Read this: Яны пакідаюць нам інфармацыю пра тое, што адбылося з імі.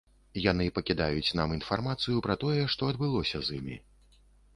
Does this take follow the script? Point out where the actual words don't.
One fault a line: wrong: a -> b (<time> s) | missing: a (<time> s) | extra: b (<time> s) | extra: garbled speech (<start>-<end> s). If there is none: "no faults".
no faults